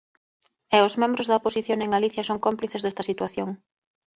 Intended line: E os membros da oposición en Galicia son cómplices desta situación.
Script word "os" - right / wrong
right